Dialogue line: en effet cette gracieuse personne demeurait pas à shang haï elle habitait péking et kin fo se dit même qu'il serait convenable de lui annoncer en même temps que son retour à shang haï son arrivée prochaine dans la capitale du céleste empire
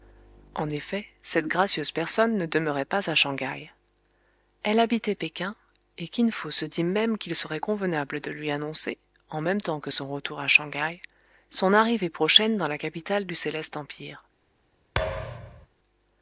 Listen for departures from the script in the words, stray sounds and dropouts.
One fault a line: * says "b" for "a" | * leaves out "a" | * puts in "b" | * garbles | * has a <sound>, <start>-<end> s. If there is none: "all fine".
* puts in "ne"
* has a thud, 15.0-15.7 s